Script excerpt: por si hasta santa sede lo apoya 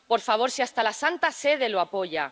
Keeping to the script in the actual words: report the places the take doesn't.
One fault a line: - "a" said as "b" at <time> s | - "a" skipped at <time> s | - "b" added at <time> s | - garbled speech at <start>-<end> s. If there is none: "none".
- "favor" added at 0.3 s
- "la" added at 0.8 s